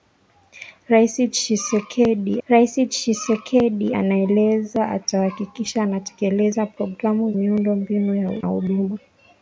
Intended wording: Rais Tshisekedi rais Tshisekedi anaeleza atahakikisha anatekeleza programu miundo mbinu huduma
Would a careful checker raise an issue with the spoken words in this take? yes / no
no